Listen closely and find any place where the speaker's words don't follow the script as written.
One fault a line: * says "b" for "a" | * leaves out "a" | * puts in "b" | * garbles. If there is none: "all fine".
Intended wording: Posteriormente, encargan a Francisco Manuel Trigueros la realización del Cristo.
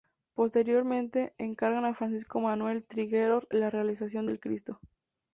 all fine